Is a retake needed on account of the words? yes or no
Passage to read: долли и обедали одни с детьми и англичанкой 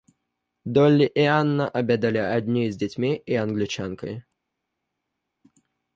yes